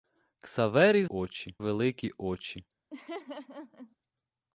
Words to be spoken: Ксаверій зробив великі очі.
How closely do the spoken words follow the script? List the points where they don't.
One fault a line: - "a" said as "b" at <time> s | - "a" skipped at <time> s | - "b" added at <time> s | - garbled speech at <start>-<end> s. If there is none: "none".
- "зробив" said as "очі" at 1.1 s